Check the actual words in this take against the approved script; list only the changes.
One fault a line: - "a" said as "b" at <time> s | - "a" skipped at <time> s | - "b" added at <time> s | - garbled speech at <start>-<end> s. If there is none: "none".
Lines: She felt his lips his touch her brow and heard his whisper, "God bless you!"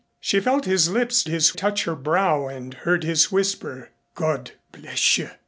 none